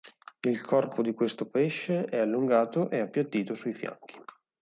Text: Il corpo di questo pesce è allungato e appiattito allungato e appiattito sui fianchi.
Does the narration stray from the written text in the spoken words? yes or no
yes